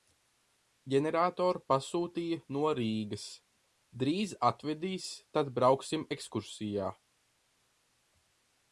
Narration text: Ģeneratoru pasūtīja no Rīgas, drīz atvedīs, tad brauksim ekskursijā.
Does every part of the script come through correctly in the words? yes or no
yes